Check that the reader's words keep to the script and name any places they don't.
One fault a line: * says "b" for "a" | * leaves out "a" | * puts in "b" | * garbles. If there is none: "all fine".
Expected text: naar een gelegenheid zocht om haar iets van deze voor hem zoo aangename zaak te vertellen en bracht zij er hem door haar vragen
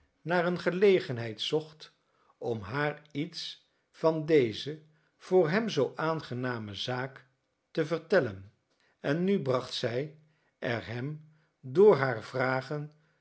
* puts in "nu"